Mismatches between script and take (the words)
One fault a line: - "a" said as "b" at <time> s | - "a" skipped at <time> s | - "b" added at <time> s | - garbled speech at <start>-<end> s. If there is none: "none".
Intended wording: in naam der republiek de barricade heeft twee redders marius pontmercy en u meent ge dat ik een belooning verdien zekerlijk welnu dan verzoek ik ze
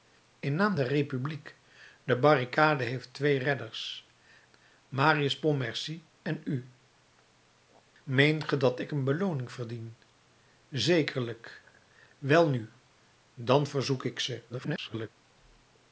- garbled speech at 14.5-15.1 s